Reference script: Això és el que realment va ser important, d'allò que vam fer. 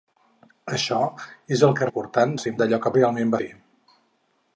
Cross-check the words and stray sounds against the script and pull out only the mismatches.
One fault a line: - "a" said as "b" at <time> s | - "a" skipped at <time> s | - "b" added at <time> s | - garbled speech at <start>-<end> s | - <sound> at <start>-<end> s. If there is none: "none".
- "realment" said as "important" at 1.9 s
- "important" skipped at 2.5 s
- "vam" said as "realment" at 2.9 s